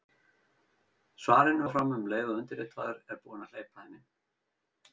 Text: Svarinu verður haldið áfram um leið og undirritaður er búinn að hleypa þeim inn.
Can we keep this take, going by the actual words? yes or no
no